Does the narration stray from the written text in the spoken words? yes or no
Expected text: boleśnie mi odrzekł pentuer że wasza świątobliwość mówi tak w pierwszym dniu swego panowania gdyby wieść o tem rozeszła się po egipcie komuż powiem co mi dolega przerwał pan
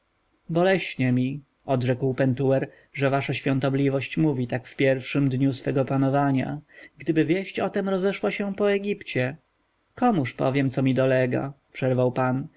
no